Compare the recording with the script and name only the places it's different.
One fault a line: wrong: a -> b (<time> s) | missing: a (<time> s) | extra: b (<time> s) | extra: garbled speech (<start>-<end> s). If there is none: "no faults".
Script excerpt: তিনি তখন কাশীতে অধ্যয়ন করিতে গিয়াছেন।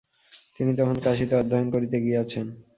no faults